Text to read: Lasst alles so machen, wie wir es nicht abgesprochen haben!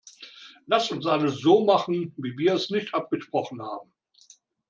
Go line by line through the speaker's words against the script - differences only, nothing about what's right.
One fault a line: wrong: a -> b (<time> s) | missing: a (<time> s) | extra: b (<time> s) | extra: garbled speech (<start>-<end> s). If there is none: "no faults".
extra: uns (0.9 s)